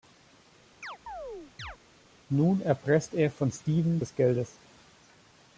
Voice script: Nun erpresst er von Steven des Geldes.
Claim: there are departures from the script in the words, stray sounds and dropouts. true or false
true